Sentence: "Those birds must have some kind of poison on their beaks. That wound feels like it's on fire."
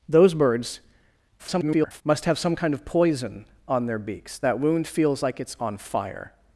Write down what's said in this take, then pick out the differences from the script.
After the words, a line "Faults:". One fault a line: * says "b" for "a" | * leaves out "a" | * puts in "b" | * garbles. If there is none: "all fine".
"Those birds [garbled] must have some kind of poison on their beaks. That wound feels like it's on fire."
Faults:
* garbles